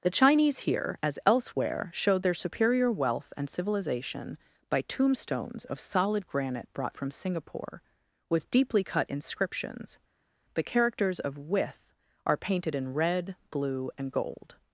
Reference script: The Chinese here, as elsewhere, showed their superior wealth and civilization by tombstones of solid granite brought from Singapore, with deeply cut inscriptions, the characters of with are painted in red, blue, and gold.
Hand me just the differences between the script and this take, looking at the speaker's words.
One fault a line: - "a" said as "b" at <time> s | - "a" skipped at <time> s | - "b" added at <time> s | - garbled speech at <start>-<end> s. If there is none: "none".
none